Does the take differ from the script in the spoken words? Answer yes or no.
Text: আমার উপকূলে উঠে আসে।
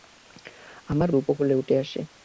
no